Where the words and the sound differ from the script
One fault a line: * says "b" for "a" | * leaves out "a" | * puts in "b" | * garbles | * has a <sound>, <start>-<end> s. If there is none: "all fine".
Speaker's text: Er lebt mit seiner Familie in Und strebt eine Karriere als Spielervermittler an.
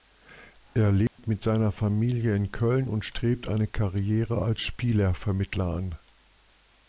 * has a dropout, 1.1-1.2 s
* puts in "Köln"